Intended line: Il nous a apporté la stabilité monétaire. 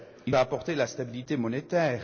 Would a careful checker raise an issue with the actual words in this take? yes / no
yes